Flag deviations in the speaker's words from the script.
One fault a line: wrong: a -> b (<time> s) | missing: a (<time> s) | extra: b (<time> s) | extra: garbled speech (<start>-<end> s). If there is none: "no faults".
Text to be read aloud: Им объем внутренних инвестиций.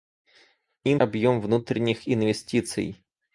no faults